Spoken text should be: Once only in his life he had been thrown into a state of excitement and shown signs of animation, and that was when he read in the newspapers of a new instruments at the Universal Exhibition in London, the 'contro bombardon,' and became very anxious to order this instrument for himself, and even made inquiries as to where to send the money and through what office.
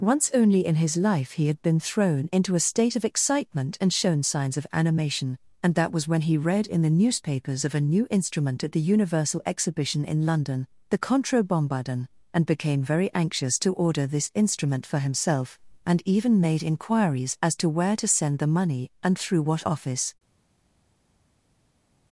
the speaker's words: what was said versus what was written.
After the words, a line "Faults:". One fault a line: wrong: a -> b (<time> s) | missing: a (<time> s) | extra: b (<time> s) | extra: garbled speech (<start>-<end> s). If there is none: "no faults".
Once only in his life he had been thrown into a state of excitement and shown signs of animation, and that was when he read in the newspapers of a new instrument at the Universal Exhibition in London, the 'contro bombardon,' and became very anxious to order this instrument for himself, and even made inquiries as to where to send the money and through what office.
Faults:
wrong: instruments -> instrument (8.1 s)